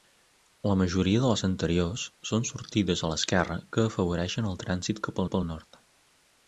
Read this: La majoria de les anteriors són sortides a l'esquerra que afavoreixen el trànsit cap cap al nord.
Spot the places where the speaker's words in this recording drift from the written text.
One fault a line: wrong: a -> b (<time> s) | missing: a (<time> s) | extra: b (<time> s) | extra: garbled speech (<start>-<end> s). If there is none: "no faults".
no faults